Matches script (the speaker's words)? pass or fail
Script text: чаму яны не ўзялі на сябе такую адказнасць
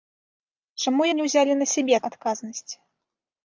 fail